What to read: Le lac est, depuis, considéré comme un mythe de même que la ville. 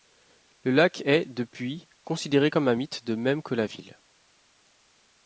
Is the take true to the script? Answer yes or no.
yes